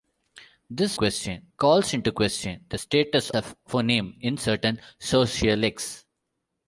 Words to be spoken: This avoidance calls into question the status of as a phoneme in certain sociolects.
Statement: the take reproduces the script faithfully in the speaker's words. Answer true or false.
false